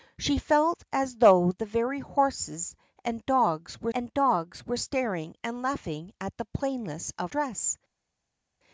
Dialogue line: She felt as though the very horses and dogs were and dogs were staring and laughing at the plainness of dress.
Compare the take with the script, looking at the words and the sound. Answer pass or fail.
pass